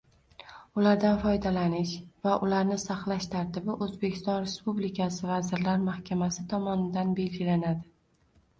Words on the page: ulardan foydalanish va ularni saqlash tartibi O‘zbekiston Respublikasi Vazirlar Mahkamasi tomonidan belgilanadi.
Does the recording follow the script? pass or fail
pass